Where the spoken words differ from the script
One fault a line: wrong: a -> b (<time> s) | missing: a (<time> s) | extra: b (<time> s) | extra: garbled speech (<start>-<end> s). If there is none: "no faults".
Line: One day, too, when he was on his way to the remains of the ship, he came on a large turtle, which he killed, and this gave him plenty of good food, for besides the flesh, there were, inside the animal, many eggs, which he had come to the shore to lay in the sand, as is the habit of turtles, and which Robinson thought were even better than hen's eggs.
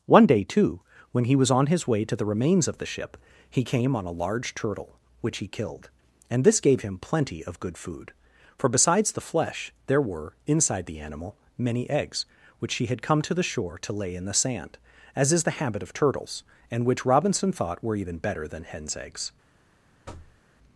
no faults